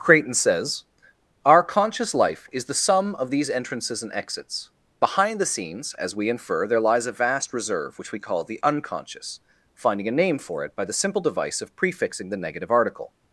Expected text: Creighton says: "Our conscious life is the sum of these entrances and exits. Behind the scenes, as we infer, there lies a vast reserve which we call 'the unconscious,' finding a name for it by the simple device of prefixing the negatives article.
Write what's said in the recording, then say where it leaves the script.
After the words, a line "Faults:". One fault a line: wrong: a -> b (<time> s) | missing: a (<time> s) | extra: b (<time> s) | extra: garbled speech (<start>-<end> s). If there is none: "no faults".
Creighton says: "Our conscious life is the sum of these entrances and exits. Behind the scenes, as we infer, there lies a vast reserve which we call 'the unconscious,' finding a name for it by the simple device of prefixing the negative article.
Faults:
wrong: negatives -> negative (12.4 s)